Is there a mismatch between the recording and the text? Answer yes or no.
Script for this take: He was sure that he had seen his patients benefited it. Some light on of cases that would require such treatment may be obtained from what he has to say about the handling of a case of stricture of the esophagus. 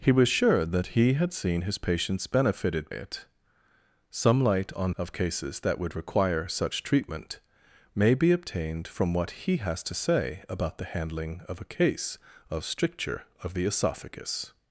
no